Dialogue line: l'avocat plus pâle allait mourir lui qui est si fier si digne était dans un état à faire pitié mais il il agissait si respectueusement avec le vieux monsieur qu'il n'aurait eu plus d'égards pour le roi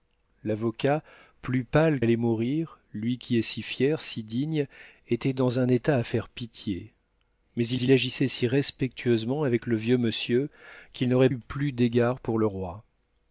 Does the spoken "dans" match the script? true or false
true